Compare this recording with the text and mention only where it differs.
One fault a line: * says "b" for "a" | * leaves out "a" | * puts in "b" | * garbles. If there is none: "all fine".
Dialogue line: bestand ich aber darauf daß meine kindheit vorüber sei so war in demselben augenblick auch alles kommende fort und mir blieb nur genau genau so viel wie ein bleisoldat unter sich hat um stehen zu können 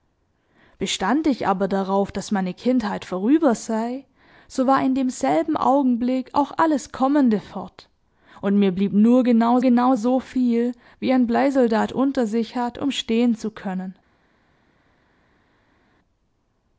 all fine